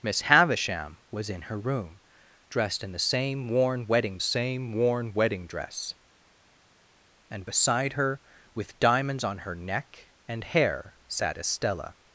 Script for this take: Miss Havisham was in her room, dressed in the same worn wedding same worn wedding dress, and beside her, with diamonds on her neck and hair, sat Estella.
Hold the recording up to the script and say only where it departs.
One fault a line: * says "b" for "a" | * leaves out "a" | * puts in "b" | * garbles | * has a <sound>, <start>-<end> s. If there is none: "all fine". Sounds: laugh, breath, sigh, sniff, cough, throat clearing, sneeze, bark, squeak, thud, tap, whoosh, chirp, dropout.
all fine